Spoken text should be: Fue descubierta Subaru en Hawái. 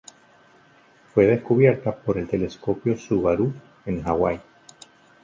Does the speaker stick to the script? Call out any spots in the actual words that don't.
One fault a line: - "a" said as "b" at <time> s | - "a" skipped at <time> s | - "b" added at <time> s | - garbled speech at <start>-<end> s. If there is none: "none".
- "por el telescopio" added at 1.9 s